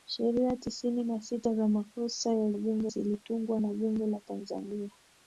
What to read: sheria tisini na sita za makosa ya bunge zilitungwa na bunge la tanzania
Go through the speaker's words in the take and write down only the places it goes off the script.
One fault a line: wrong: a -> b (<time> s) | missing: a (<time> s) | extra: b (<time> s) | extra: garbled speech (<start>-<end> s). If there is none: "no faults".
no faults